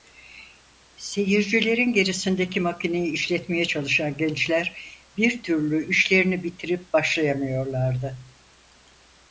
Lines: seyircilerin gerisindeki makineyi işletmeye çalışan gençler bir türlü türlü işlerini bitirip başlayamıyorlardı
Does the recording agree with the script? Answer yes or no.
no